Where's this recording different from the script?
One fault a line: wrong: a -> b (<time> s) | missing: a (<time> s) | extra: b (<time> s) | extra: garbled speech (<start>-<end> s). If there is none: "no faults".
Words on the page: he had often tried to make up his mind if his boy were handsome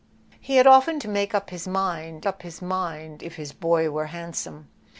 missing: tried (1.0 s)
extra: up his mind (2.3 s)